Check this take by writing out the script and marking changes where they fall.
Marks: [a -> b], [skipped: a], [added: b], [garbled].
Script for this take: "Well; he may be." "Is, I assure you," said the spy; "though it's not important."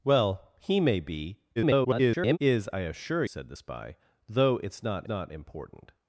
"Well; he may be." [garbled] "Is, I assure [skipped: you,"] said the spy; "though it's not [added: not] important."